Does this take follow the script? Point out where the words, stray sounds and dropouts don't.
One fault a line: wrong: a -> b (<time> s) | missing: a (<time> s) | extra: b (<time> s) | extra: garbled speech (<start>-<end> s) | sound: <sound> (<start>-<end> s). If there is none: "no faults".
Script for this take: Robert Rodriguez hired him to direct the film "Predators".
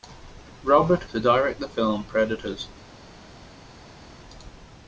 missing: Rodriguez hired him (1.1 s)